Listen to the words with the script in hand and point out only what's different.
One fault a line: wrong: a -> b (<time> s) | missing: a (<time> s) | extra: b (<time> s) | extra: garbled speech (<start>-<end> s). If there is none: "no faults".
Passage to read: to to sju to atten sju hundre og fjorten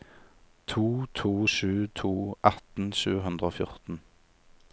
no faults